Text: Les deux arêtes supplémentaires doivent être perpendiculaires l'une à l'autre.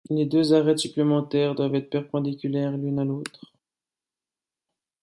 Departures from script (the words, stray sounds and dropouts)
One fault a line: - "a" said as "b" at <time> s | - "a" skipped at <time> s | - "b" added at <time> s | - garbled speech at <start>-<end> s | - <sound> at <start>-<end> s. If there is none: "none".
none